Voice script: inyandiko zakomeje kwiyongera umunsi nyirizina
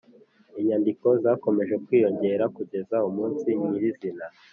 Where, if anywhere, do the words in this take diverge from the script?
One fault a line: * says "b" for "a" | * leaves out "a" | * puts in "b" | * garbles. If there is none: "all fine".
* puts in "kugeza"